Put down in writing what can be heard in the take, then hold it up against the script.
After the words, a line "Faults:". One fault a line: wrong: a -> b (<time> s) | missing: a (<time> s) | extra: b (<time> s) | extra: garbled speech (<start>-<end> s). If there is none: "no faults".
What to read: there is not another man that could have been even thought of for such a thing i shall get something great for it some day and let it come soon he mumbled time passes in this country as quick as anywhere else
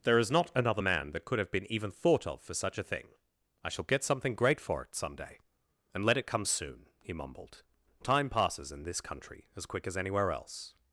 there is not another man that could have been even thought of for such a thing i shall get something great for it some day and let it come soon he mumbled time passes in this country as quick as anywhere else
Faults:
no faults